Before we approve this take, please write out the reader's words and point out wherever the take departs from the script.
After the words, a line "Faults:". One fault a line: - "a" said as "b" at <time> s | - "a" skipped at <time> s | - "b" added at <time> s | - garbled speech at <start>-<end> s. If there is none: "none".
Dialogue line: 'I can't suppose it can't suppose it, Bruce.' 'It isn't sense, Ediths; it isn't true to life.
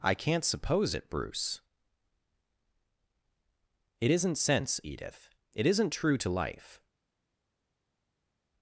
'I can't suppose it, Bruce.' 'It isn't sense, Edith; it isn't true to life.
Faults:
- "can't suppose it" skipped at 1.1 s
- "Ediths" said as "Edith" at 4.8 s